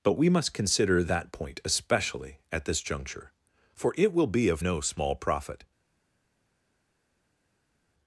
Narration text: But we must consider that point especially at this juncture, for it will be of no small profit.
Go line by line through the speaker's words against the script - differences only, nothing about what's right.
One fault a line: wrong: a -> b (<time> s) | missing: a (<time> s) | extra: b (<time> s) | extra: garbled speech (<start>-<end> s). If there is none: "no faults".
no faults